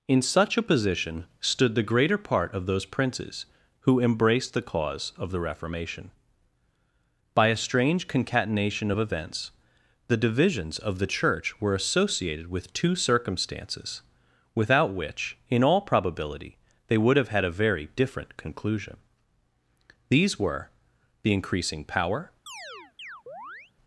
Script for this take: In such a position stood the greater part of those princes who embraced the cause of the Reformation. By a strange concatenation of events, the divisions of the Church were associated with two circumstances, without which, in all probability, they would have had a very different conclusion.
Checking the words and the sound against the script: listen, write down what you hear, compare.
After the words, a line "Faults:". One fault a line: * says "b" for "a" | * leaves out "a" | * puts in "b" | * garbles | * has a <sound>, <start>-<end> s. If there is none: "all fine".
In such a position stood the greater part of those princes who embraced the cause of the Reformation. By a strange concatenation of events, the divisions of the Church were associated with two circumstances, without which, in all probability, they would have had a very different conclusion. These were, the increasing power
Faults:
* puts in "These were the increasing power"
* has a chirp, 22.5-23.7 s